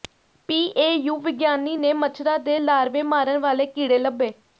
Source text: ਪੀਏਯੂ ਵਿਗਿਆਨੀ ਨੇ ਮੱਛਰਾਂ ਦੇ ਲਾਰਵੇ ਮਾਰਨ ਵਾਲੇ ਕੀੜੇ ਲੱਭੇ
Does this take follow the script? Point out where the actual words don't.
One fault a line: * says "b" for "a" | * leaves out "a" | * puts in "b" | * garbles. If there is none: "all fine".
all fine